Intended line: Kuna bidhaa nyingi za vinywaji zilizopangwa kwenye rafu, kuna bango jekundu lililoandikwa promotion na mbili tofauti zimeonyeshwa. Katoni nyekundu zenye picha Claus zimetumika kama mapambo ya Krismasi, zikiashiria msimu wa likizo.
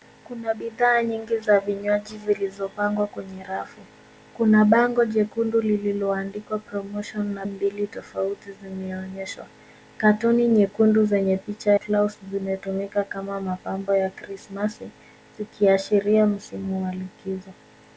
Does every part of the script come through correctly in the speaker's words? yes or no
yes